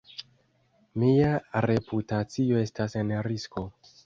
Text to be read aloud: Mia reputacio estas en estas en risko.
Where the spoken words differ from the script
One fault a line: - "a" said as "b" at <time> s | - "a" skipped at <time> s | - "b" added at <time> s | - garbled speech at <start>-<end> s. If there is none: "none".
- "estas en" skipped at 3.1 s